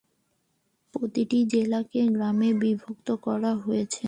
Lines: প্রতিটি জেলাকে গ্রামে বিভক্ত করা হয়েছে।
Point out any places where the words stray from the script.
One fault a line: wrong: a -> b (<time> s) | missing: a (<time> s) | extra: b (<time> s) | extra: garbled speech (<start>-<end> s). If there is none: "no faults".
no faults